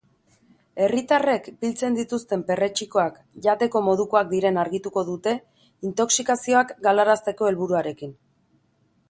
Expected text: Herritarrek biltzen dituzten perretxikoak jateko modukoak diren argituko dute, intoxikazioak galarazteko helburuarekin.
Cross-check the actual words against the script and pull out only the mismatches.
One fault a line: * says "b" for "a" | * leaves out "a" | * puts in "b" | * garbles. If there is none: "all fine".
all fine